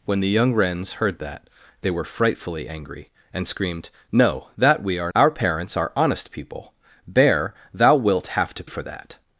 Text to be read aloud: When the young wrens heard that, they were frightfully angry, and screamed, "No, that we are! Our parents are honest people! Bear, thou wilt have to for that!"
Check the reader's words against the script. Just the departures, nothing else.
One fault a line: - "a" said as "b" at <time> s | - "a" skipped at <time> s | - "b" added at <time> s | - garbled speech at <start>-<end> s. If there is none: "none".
none